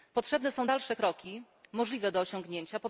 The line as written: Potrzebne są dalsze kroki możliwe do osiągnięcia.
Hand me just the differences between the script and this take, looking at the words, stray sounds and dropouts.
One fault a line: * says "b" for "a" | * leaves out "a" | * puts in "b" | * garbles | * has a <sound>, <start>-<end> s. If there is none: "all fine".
all fine